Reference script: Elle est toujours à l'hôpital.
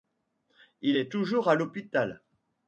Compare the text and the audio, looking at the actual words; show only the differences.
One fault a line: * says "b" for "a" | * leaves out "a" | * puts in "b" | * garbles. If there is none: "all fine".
* says "Il" for "Elle"